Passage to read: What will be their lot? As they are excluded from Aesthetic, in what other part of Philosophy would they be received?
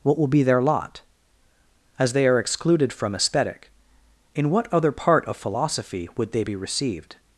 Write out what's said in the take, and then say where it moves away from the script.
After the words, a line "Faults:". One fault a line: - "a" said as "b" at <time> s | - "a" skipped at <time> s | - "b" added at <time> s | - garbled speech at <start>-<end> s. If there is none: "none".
What will be their lot? As they are excluded from Aesthetic, in what other part of Philosophy would they be received?
Faults:
none